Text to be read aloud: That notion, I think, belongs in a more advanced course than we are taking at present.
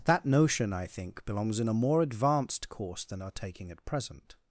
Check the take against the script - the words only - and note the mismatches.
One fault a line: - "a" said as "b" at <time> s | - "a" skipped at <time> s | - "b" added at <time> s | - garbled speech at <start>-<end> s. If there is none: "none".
- "we" skipped at 3.2 s